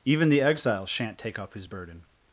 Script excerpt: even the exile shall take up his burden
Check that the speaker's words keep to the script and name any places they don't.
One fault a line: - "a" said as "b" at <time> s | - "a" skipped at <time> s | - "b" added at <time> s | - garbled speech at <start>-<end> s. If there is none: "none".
- "shall" said as "shan't" at 0.8 s